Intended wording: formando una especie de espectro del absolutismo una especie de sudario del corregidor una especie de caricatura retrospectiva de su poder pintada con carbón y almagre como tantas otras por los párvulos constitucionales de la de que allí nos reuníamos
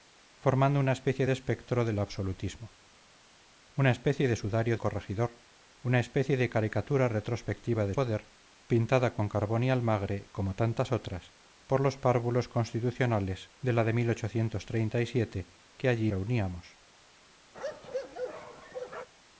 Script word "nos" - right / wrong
wrong